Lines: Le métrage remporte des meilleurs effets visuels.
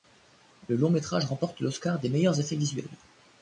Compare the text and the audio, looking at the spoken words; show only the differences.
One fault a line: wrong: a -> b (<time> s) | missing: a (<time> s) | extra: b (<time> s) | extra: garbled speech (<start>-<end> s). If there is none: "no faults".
extra: long (0.8 s)
extra: l'Oscar (1.6 s)